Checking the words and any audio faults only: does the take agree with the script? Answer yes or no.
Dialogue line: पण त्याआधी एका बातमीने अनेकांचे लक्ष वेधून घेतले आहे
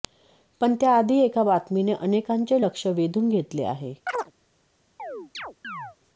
no